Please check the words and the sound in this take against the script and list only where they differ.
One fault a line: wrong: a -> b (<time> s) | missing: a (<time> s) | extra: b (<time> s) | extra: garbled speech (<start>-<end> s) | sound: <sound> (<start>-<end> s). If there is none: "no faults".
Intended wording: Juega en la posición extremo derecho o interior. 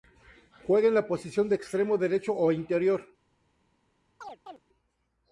extra: de (1.5 s)
sound: chirp (4.2-4.6 s)